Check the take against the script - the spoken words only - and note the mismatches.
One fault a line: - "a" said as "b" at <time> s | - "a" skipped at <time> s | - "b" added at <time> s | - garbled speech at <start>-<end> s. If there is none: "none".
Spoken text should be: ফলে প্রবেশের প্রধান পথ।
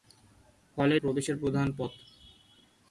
none